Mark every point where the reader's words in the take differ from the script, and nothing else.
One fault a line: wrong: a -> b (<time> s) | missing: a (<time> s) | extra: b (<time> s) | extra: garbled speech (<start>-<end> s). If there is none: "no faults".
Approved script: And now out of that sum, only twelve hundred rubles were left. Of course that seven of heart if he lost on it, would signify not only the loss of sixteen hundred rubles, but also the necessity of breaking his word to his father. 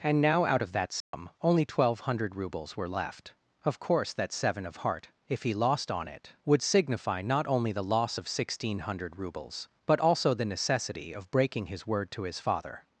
no faults